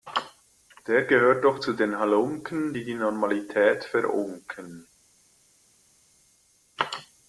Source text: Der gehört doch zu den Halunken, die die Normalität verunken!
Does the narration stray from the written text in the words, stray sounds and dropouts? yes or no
no